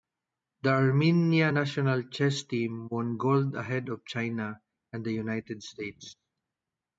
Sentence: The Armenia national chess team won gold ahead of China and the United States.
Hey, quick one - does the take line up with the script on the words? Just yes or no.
yes